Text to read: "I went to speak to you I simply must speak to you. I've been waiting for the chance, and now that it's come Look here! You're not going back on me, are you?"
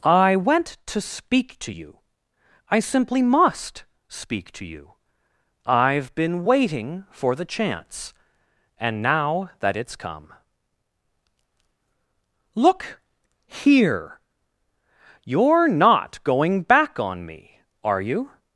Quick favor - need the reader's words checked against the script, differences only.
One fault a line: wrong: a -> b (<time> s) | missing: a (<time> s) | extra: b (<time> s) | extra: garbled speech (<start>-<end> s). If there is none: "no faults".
no faults